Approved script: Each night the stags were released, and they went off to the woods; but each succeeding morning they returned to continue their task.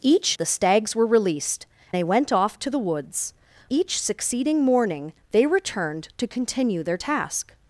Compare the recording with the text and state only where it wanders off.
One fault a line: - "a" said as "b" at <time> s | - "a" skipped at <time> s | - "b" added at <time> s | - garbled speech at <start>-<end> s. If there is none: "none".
- "night" skipped at 0.3 s
- "and" skipped at 1.7 s
- "but" skipped at 3.3 s